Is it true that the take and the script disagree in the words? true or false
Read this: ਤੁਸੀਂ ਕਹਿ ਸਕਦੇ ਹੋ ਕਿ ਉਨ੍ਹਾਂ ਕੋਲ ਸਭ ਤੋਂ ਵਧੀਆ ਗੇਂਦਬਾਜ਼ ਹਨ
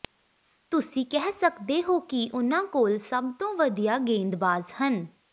false